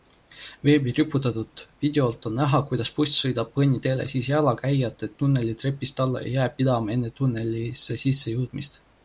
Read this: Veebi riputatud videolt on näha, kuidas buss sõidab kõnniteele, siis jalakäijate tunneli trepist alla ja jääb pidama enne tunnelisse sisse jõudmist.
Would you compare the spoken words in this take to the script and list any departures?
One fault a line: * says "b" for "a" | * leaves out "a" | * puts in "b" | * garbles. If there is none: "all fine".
all fine